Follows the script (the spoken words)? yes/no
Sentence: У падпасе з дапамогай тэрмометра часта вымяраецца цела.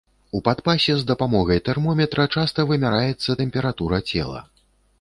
no